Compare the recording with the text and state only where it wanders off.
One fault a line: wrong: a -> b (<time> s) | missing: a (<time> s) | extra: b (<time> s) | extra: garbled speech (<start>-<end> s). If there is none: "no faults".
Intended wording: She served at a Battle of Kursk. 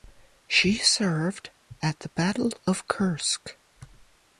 wrong: a -> the (2.0 s)